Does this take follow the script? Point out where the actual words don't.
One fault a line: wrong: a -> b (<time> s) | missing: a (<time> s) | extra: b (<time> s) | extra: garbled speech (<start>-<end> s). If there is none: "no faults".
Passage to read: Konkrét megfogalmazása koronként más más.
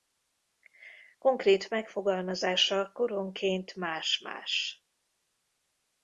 no faults